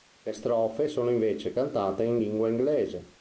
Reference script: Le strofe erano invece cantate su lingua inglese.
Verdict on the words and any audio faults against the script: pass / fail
fail